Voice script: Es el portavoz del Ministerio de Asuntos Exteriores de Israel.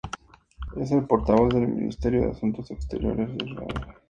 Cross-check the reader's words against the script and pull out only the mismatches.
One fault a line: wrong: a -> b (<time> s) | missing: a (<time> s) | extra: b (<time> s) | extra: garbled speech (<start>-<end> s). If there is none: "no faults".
no faults